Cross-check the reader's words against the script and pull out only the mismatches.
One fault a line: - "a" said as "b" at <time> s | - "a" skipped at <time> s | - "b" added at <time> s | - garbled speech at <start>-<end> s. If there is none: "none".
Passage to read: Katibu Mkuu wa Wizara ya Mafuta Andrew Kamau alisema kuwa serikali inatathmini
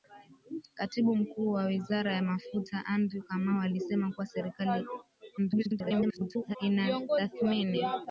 - garbled speech at 5.4-6.6 s